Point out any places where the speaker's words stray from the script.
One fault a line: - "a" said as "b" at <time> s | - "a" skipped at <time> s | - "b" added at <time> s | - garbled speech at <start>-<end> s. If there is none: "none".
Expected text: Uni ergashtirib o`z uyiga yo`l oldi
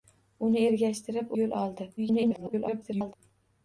- "o`z uyiga" skipped at 1.3 s
- garbled speech at 2.0-3.1 s